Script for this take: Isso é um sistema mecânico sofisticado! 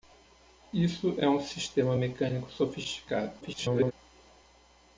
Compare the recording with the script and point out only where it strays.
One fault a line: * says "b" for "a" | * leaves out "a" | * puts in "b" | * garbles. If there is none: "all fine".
* garbles